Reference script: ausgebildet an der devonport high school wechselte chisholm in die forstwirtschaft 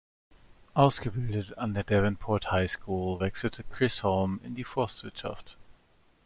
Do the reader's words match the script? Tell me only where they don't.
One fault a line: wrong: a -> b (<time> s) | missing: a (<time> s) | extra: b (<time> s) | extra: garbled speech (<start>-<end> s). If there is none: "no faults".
no faults